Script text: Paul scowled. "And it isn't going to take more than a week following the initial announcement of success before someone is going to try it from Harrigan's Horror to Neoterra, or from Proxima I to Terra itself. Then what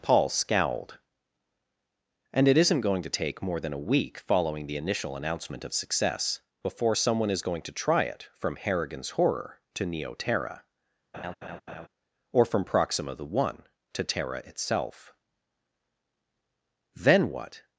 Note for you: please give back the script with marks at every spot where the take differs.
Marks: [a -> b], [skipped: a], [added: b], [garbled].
Paul scowled. "And it isn't going to take more than a week following the initial announcement of success before someone is going to try it from Harrigan's Horror to Neoterra, or from Proxima [I -> the one] to Terra itself. Then what